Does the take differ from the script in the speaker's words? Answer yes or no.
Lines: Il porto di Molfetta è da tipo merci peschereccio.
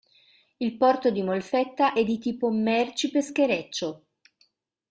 yes